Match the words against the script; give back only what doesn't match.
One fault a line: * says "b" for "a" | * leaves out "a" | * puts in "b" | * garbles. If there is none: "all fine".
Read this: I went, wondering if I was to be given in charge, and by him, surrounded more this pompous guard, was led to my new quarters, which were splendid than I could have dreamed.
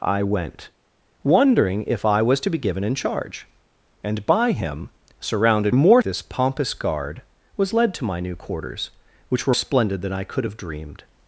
all fine